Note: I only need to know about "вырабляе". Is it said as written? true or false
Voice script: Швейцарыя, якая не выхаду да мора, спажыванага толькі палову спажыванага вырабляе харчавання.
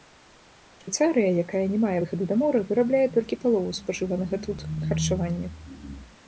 false